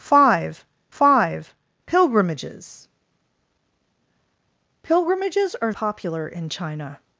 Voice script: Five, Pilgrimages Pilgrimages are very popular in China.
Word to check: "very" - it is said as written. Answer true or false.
false